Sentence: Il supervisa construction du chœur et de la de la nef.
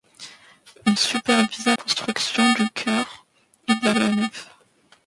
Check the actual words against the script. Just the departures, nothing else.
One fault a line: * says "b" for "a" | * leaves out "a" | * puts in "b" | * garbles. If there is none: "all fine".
all fine